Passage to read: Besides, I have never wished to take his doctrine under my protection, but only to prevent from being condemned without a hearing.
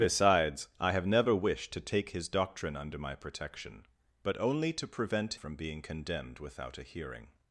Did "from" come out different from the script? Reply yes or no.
no